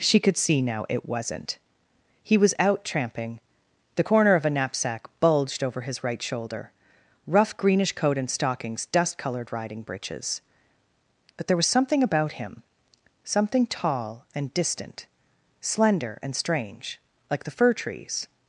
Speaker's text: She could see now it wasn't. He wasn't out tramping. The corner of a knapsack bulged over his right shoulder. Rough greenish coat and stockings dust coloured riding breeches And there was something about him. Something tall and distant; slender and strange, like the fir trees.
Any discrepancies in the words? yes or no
yes